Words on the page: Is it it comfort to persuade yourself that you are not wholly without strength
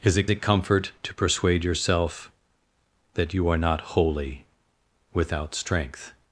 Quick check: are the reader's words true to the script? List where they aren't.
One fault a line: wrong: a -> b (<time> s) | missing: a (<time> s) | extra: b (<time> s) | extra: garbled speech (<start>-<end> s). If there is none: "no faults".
no faults